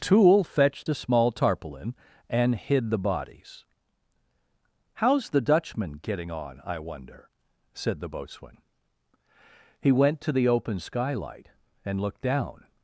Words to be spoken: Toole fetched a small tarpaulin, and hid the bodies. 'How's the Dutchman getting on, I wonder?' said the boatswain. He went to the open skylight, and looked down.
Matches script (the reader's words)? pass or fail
pass